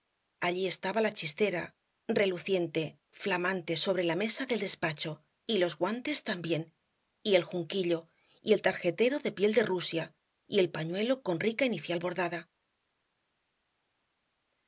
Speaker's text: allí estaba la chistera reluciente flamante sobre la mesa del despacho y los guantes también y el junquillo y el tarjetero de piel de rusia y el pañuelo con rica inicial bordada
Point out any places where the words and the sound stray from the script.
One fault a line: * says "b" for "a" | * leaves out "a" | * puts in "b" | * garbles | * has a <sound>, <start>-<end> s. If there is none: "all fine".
all fine